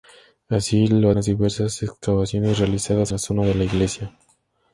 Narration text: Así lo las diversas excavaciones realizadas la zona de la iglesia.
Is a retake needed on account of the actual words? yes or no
no